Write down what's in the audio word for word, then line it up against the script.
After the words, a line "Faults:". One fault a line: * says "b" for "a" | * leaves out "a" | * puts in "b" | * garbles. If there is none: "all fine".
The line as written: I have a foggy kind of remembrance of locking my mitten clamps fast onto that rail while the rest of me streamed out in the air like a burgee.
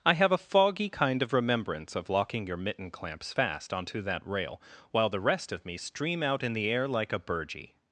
I have a foggy kind of remembrance of locking your mitten clamps fast onto that rail while the rest of me stream out in the air like a burgee.
Faults:
* says "your" for "my"
* says "stream" for "streamed"